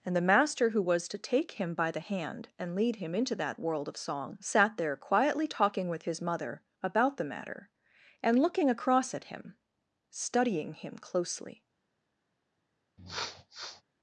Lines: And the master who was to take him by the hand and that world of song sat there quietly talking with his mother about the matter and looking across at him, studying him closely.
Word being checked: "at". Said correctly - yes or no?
yes